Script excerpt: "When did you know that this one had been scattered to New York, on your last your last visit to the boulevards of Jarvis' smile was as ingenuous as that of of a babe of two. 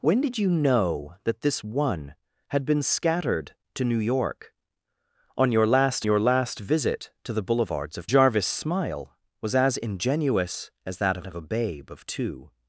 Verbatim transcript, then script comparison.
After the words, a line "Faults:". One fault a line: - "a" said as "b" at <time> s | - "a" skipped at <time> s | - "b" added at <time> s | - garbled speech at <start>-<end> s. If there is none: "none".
"When did you know that this one had been scattered to New York, on your last your last visit to the boulevards of Jarvis' smile was as ingenuous as that of of a babe of two.
Faults:
none